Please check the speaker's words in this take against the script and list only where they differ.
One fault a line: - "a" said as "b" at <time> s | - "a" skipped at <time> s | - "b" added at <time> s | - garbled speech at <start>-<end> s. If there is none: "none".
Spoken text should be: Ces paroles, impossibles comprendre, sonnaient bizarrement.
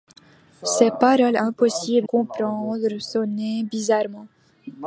none